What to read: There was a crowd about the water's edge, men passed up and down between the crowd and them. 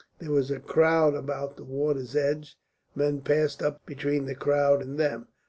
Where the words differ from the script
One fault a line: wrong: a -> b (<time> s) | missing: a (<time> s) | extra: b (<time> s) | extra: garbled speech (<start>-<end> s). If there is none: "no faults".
missing: and down (3.8 s)